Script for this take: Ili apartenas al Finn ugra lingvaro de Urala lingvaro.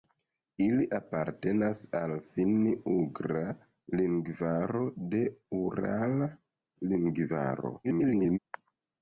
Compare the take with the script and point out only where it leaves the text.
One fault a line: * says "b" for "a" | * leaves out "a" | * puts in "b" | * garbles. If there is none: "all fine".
* garbles